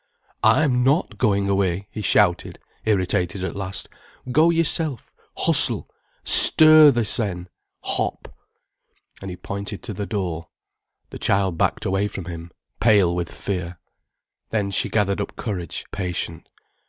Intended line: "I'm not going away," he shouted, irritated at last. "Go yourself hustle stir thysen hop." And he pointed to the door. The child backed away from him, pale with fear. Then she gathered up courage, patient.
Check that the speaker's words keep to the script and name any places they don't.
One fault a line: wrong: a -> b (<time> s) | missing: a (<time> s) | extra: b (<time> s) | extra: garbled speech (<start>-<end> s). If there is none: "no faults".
no faults